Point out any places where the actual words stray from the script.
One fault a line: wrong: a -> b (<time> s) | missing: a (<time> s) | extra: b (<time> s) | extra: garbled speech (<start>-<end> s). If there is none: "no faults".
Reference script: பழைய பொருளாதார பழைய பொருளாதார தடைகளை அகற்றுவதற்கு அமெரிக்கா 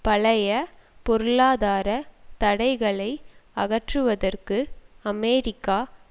missing: பழைய பொருளாதார (1.9 s)